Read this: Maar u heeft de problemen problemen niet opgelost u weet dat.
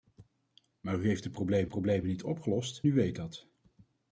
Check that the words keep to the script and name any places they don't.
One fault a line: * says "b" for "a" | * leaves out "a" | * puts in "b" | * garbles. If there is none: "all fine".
all fine